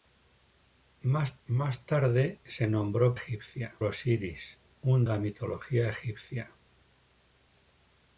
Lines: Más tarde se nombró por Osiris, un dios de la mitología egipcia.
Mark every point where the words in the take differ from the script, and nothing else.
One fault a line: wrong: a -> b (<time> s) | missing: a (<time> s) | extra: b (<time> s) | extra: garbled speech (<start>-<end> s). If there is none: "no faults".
extra: más (1.5 s)
wrong: por -> egipcia (3.1 s)
missing: dios de (5.1 s)